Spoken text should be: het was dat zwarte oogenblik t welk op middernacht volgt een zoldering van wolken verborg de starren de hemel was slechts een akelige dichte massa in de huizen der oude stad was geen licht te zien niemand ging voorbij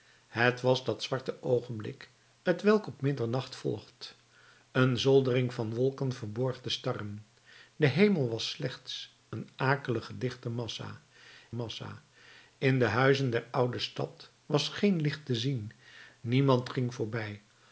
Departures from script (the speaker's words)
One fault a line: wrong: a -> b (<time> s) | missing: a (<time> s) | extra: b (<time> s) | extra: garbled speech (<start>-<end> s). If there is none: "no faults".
extra: massa (11.5 s)